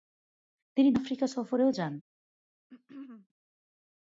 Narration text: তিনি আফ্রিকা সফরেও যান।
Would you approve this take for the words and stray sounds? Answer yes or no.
no